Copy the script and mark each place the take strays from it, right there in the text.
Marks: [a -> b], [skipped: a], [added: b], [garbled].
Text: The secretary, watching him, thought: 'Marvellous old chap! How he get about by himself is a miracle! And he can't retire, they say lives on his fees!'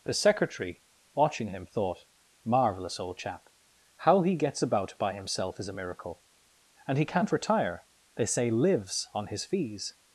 The secretary, watching him, thought: 'Marvellous old chap! How he [get -> gets] about by himself is a miracle! And he can't retire, they say lives on his fees!'